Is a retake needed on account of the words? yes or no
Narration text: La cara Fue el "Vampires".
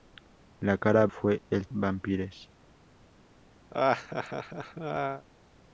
no